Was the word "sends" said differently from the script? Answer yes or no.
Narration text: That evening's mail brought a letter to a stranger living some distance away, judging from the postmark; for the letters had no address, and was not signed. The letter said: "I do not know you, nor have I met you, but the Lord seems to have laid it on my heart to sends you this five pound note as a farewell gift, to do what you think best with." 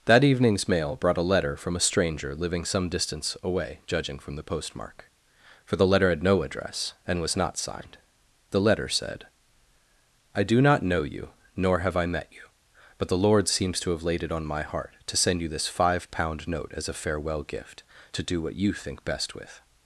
yes